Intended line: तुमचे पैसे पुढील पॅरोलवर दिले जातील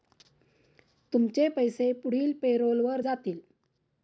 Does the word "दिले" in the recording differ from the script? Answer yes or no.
yes